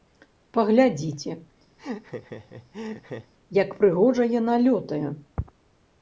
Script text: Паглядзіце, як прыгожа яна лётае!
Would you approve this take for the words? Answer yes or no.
yes